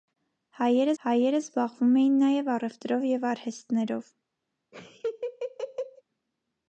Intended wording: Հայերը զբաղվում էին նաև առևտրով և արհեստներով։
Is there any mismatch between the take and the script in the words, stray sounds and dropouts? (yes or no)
yes